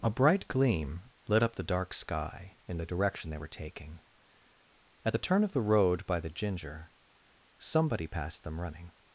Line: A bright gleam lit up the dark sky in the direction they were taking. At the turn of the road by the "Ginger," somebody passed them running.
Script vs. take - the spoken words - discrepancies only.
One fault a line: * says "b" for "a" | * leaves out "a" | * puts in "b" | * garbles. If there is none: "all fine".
all fine